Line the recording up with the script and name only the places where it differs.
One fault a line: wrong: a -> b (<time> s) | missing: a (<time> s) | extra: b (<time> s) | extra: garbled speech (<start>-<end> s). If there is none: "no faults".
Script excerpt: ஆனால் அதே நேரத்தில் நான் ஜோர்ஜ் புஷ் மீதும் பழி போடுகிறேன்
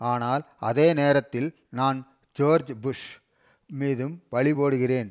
no faults